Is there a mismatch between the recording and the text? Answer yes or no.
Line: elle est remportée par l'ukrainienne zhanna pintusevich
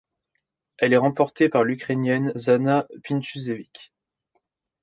no